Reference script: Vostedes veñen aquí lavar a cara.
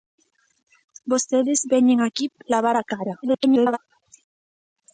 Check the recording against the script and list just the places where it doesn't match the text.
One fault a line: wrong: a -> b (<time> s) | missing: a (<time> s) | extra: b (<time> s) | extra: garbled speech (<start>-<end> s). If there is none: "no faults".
extra: garbled speech (3.2-3.8 s)